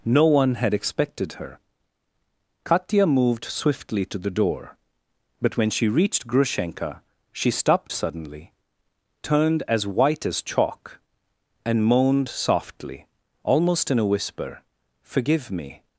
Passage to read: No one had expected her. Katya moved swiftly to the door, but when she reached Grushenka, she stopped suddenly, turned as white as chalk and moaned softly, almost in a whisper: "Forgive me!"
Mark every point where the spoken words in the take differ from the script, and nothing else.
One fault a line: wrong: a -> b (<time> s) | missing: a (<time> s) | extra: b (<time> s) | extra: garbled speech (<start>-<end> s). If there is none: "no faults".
no faults